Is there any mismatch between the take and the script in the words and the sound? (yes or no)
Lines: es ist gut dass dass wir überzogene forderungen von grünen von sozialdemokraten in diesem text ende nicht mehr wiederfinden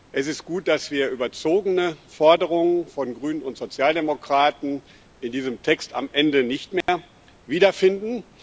yes